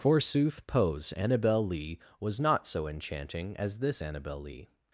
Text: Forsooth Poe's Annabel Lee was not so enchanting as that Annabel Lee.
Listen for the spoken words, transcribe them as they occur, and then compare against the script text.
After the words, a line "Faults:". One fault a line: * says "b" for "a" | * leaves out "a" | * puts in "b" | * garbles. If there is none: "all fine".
Forsooth Poe's Annabel Lee was not so enchanting as this Annabel Lee.
Faults:
* says "this" for "that"